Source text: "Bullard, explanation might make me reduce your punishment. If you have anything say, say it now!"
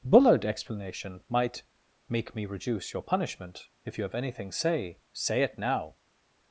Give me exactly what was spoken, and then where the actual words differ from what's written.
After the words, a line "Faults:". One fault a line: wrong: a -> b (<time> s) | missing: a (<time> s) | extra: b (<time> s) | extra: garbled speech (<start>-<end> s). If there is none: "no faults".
"Bullard, explanation might make me reduce your punishment. If you have anything say, say it now!"
Faults:
no faults